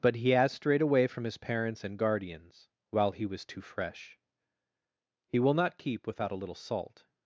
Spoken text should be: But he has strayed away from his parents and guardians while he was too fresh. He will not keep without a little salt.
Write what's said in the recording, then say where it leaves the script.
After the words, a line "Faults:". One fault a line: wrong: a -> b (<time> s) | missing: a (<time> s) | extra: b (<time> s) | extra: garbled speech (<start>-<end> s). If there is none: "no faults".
But he has strayed away from his parents and guardians while he was too fresh. He will not keep without a little salt.
Faults:
no faults